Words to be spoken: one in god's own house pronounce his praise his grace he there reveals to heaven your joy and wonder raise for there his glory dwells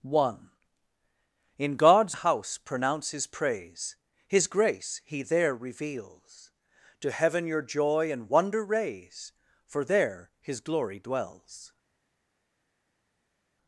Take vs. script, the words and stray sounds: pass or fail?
fail